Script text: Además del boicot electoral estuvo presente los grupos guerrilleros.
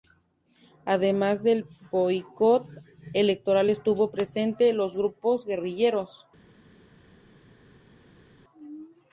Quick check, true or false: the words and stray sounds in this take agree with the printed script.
true